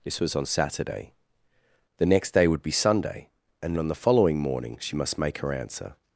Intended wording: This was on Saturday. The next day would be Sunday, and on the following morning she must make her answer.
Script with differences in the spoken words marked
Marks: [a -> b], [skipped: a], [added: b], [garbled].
This was on Saturday. The next day would be Sunday, and on the following morning she must make her answer.